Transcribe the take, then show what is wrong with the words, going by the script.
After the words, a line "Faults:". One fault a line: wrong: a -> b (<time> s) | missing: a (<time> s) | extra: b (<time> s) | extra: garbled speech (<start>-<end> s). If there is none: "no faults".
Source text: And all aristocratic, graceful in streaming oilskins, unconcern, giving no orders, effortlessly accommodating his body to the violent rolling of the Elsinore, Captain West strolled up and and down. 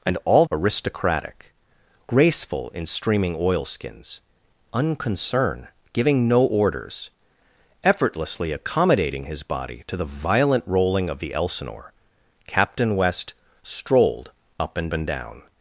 And all aristocratic, graceful in streaming oilskins, unconcern, giving no orders, effortlessly accommodating his body to the violent rolling of the Elsinore, Captain West strolled up and and down.
Faults:
no faults